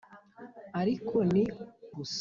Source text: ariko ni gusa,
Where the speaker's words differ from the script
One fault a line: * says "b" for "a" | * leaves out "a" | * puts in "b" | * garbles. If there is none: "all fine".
all fine